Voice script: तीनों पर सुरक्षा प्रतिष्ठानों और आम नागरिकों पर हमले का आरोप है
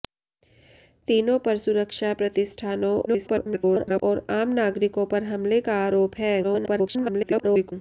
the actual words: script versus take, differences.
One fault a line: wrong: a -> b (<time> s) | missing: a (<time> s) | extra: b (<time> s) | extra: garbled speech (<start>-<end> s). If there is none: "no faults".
extra: garbled speech (3.1-4.0 s)
extra: garbled speech (6.4-7.7 s)